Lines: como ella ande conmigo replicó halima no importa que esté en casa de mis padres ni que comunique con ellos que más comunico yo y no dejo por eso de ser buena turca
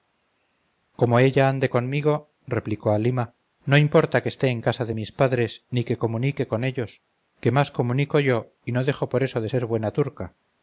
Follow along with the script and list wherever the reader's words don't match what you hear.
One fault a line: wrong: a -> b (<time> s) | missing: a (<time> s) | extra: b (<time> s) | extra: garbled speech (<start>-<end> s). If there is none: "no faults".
no faults